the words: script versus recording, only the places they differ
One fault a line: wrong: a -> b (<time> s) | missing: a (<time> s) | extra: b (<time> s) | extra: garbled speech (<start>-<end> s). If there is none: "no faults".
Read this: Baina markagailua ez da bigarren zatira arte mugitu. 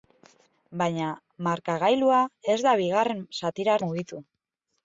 missing: arte (3.8 s)